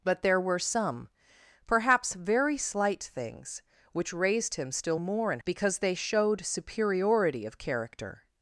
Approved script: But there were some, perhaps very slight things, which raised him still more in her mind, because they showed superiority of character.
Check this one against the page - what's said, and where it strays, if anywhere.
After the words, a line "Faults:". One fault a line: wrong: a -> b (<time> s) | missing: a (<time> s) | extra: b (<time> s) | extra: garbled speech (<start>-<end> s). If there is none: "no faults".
But there were some, perhaps very slight things, which raised him still more in because they showed superiority of character.
Faults:
missing: her mind (5.4 s)